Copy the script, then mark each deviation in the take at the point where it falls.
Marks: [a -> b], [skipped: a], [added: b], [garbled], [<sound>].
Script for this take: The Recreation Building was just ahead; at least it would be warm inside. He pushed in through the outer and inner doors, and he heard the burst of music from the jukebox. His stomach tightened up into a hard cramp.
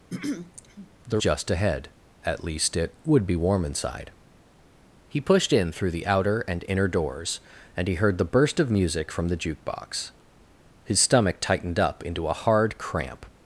[throat clearing] The [skipped: Recreation Building was] just ahead; at least it would be warm inside. He pushed in through the outer and inner doors, and he heard the burst of music from the jukebox. His stomach tightened up into a hard cramp.